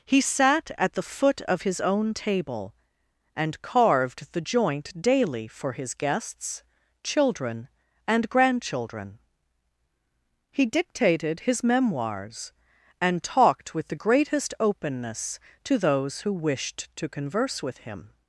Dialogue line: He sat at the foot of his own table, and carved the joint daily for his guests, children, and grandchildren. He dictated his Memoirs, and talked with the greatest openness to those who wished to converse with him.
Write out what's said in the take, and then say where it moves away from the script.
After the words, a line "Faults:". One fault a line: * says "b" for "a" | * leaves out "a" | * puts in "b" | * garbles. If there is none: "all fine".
He sat at the foot of his own table, and carved the joint daily for his guests, children, and grandchildren. He dictated his Memoirs, and talked with the greatest openness to those who wished to converse with him.
Faults:
all fine